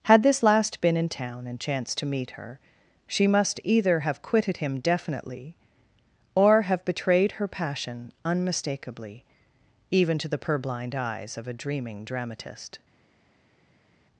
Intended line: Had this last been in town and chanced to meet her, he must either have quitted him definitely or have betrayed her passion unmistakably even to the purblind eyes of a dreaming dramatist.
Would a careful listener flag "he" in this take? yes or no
yes